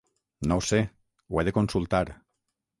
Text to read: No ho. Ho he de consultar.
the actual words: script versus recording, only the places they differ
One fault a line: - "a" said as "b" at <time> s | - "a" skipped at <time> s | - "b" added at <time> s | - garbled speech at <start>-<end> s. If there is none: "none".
- "sé" added at 0.7 s